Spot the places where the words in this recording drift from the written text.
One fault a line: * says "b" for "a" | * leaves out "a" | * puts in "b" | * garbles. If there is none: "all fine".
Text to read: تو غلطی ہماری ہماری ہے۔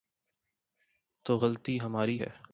* leaves out "ہماری"